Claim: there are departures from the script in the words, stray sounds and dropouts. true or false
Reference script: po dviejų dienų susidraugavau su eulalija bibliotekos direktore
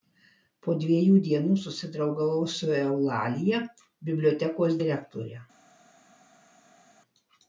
false